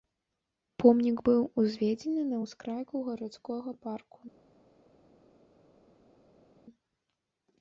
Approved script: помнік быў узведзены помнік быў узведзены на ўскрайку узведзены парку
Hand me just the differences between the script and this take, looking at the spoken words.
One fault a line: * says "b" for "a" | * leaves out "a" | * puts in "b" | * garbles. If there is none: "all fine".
* leaves out "помнік быў узведзены"
* says "гарадскога" for "узведзены"